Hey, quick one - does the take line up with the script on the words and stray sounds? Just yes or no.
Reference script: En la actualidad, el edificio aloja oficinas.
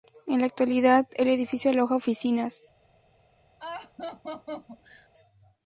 no